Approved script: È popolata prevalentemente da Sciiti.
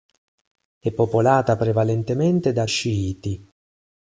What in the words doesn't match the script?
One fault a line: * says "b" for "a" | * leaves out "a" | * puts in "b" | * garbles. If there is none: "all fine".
all fine